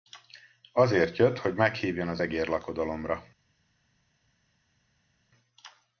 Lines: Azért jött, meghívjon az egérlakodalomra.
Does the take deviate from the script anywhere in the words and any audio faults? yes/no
yes